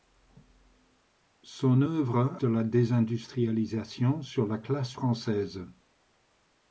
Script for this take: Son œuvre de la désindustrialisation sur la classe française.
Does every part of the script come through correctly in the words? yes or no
yes